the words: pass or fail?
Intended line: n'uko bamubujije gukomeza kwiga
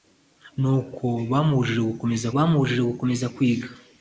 fail